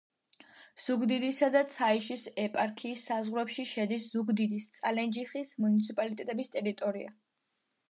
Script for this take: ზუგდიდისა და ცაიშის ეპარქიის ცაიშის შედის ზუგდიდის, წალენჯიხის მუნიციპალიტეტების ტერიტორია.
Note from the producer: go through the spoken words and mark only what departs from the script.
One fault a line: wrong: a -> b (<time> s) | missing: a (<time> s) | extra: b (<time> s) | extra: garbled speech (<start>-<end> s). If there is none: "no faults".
wrong: ცაიშის -> საზღვრებში (3.1 s)